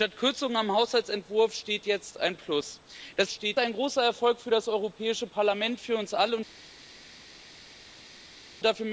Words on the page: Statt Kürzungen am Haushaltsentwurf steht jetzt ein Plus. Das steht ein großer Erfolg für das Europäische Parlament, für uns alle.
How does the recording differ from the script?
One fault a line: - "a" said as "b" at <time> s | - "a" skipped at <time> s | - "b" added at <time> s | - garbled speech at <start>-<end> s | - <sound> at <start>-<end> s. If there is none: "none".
none